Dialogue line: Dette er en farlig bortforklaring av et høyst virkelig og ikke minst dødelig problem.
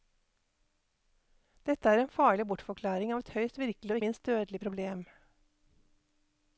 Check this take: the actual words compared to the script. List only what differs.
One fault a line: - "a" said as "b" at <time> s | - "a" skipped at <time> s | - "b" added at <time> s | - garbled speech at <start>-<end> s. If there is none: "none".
- "ikke" skipped at 4.0 s